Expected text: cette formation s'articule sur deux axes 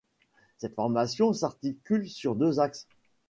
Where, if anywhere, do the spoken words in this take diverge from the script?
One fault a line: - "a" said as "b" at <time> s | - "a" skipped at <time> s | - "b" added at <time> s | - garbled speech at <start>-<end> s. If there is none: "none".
none